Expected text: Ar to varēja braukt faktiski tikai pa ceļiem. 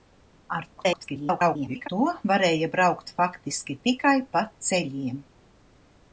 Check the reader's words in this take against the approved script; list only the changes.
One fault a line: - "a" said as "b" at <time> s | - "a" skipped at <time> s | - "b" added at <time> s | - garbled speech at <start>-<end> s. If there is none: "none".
- garbled speech at 0.8-1.9 s